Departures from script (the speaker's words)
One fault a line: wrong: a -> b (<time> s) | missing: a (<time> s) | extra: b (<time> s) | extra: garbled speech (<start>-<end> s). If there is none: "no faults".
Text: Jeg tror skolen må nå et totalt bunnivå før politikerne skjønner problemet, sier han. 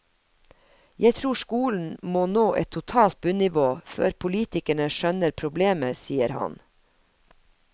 no faults